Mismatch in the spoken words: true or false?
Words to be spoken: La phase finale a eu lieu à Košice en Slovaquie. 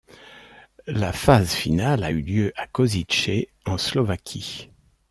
false